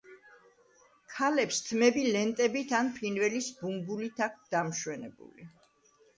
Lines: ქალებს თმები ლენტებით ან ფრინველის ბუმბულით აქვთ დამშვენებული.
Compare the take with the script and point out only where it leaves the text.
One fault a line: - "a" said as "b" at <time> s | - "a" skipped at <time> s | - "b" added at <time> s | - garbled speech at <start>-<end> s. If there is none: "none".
none